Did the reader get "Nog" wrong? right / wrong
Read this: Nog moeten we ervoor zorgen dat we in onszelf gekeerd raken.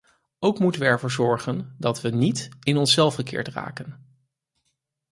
wrong